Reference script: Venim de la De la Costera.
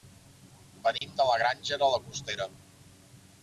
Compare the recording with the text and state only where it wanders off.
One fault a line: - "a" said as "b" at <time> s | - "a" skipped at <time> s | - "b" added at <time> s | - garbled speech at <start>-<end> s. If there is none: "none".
- "Granja" added at 1.4 s